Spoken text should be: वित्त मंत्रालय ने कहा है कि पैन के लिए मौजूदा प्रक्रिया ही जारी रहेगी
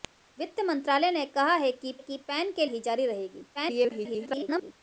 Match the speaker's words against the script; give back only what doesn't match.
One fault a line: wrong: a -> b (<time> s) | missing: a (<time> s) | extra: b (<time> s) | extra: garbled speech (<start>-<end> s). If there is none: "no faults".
extra: कि (2.0 s)
missing: लिए मौजूदा प्रक्रिया (2.6 s)
extra: garbled speech (3.5-4.7 s)